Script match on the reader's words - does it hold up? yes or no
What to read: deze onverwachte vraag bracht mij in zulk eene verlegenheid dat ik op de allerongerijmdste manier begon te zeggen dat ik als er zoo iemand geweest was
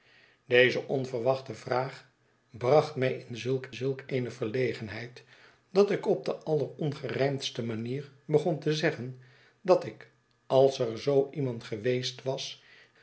no